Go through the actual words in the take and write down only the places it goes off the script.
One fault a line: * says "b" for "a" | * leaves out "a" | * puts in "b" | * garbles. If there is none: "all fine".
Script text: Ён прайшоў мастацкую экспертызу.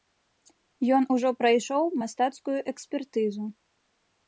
* puts in "ужо"